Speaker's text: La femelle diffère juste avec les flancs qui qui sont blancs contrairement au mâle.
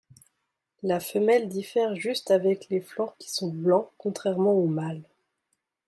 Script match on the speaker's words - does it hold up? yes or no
no